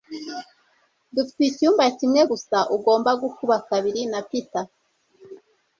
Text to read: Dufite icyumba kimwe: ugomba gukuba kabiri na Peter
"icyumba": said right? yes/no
yes